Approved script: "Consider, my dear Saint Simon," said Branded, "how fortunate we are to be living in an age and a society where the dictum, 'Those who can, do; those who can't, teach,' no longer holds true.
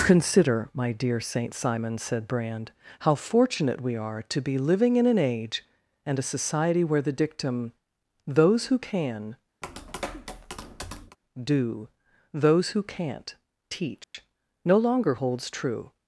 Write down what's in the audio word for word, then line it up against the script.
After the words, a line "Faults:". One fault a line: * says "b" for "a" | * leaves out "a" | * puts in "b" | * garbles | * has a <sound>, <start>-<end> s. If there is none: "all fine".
"Consider, my dear Saint Simon," said Brand, "how fortunate we are to be living in an age and a society where the dictum, 'Those who can, do; those who can't, teach,' no longer holds true.
Faults:
* says "Brand" for "Branded"
* has a tap, 9.6-11.2 s
* has a dropout, 14.0-14.1 s